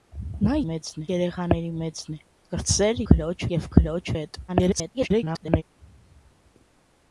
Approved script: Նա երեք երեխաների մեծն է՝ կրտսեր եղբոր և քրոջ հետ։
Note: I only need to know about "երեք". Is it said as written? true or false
false